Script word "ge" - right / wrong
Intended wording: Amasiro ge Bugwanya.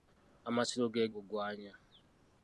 right